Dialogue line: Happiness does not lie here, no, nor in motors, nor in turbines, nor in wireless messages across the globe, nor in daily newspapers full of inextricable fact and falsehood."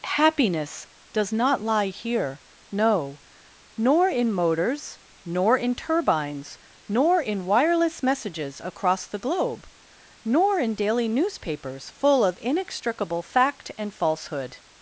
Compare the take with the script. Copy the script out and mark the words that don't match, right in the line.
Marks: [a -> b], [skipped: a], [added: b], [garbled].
Happiness does not lie here, no, nor in motors, nor in turbines, nor in wireless messages across the globe, nor in daily newspapers full of inextricable fact and falsehood."